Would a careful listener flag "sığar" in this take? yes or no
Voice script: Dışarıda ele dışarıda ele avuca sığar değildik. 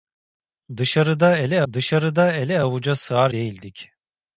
no